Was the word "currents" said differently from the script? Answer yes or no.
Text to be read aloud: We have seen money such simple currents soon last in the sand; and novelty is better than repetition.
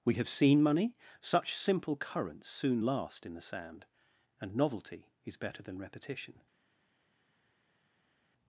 no